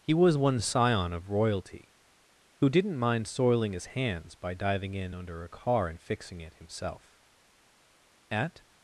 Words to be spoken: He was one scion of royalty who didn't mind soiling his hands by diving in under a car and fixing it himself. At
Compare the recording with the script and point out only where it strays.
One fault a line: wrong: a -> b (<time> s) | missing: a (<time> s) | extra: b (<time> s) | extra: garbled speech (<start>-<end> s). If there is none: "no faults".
no faults